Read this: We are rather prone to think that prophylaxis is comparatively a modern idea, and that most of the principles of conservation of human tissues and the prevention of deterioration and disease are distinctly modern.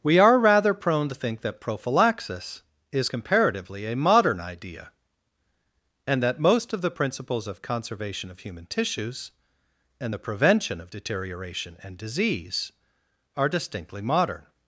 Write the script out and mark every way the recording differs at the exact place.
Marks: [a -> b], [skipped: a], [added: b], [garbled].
We are rather prone to think that prophylaxis is comparatively a modern idea, and that most of the principles of conservation of human tissues and the prevention of deterioration and disease are distinctly modern.